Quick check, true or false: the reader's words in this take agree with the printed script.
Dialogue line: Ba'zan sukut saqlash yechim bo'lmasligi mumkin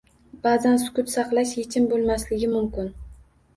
true